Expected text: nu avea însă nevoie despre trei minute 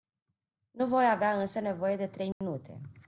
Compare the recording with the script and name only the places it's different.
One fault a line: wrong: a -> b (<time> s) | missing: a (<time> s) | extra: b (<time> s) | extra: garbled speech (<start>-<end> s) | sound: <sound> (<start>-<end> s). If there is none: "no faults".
extra: voi (0.9 s)
wrong: despre -> de (1.9 s)
sound: dropout (2.3-2.4 s)